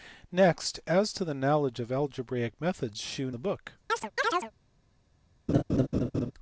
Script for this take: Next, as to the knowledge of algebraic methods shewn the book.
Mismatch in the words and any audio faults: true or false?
true